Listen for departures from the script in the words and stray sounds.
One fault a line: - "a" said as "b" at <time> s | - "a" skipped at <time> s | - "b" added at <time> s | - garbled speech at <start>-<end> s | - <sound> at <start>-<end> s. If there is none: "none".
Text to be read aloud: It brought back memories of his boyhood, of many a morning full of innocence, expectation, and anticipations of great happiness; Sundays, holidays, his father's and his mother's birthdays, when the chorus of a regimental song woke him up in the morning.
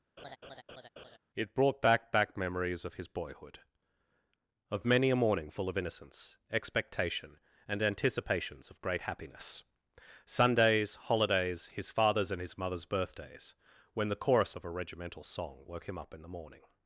- laugh at 0.2-1.2 s
- "back" added at 2.1 s